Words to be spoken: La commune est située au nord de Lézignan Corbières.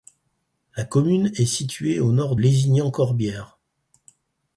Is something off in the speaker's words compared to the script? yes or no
yes